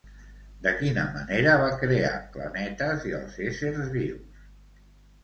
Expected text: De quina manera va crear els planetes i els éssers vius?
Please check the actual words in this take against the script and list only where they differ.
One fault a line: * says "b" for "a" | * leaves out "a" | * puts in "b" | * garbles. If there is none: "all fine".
* leaves out "els"